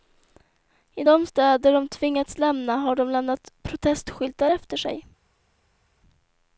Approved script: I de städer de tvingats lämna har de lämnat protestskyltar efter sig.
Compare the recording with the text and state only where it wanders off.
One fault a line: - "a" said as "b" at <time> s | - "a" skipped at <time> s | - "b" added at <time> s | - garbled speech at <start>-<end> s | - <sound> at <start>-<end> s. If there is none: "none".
none